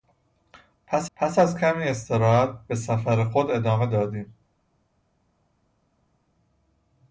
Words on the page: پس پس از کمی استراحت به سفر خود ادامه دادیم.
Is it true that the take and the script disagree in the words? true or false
false